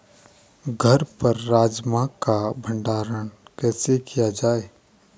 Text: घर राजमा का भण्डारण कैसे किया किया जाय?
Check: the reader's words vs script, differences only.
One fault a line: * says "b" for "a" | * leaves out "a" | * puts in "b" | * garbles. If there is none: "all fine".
* puts in "पर"
* leaves out "किया"